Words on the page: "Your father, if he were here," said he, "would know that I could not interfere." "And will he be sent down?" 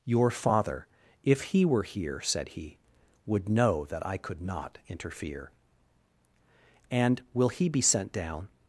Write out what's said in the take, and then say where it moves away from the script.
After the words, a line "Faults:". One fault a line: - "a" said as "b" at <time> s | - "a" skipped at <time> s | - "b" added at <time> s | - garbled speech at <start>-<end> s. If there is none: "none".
"Your father, if he were here," said he, "would know that I could not interfere." "And will he be sent down?"
Faults:
none